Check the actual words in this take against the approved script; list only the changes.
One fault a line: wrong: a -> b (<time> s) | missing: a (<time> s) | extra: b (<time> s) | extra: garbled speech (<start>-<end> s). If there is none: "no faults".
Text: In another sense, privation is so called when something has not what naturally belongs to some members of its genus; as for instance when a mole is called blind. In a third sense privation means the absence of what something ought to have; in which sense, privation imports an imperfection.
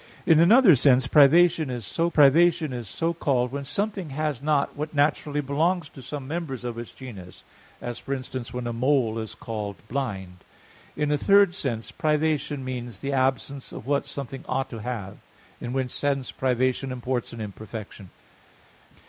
extra: privation is so (2.1 s)